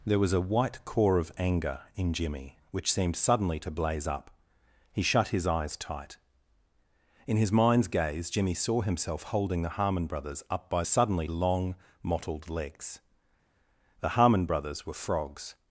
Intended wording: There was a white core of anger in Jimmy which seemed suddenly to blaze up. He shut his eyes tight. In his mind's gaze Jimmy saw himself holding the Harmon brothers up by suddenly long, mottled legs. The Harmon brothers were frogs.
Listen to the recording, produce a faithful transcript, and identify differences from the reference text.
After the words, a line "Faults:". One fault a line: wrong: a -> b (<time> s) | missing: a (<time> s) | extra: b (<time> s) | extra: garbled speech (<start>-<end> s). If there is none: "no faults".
There was a white core of anger in Jimmy which seemed suddenly to blaze up. He shut his eyes tight. In his mind's gaze Jimmy saw himself holding the Harmon brothers up by suddenly long, mottled legs. The Harmon brothers were frogs.
Faults:
no faults